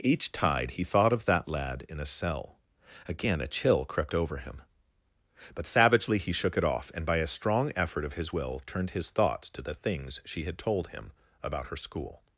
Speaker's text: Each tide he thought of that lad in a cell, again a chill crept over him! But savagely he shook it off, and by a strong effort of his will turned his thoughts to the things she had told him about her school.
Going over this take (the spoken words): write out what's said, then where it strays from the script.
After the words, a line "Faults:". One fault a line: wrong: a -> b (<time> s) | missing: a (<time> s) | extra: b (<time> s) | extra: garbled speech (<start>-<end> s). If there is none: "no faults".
Each tide he thought of that lad in a cell, again a chill crept over him! But savagely he shook it off, and by a strong effort of his will turned his thoughts to the things she had told him about her school.
Faults:
no faults